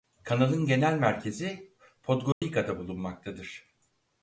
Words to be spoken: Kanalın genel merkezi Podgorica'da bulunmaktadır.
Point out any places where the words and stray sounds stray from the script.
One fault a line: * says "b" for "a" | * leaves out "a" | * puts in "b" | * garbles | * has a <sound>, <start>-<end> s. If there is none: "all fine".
* has a dropout, 2.3-2.4 s